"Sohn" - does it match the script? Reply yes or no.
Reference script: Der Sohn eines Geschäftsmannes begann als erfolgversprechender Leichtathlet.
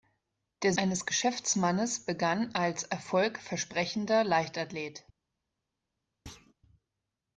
no